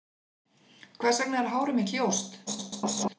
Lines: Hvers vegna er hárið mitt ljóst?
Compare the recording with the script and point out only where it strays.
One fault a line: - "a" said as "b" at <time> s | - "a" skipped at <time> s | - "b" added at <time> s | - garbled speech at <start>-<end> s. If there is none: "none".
- garbled speech at 2.5-3.2 s